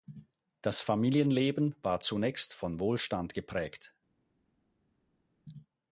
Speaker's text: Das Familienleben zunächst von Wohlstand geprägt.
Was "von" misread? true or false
false